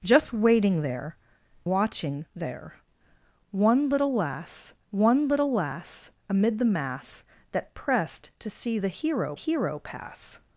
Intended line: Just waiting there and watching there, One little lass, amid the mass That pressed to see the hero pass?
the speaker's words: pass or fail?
fail